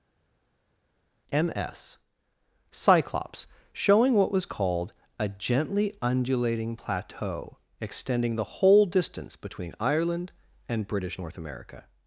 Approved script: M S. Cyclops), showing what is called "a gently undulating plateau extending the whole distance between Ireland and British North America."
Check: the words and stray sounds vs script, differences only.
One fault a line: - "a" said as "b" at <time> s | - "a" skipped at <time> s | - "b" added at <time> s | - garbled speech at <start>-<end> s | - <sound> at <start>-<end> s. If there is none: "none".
- "is" said as "was" at 4.3 s